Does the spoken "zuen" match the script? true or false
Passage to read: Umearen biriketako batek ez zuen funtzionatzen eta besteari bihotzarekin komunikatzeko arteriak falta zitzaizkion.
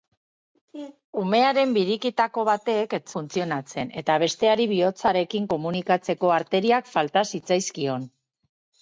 false